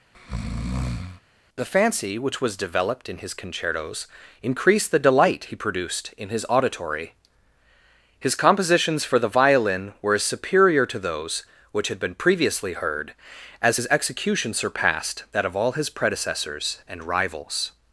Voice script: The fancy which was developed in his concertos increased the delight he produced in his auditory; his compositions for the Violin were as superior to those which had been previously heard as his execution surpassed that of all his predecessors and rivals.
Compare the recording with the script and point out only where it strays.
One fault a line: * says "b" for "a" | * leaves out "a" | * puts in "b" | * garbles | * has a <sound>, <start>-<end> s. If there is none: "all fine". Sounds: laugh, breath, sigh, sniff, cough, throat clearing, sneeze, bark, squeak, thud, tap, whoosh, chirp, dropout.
* has a breath, 0.1-1.2 s